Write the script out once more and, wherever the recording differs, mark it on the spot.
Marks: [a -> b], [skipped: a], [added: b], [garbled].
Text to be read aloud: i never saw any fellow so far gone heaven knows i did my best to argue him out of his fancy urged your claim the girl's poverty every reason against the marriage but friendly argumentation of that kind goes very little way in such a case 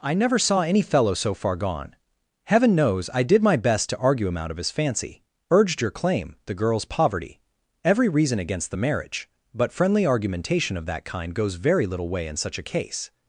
i never saw any fellow so far gone heaven knows i did my best to argue him out of his fancy urged your claim the girl's poverty every reason against the marriage but friendly argumentation of that kind goes very little way in such a case